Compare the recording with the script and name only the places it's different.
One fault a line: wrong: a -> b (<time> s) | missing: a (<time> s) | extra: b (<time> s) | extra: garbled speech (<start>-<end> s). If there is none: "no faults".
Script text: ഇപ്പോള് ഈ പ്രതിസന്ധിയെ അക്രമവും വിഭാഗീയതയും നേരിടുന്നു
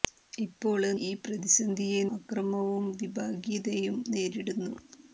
no faults